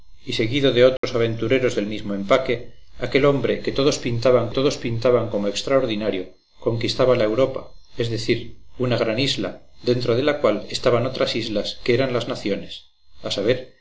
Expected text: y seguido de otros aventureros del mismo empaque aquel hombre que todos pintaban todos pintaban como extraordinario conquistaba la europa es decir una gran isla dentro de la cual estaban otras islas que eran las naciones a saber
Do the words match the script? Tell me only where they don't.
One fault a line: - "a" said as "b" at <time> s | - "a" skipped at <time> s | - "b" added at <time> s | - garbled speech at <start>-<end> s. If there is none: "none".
none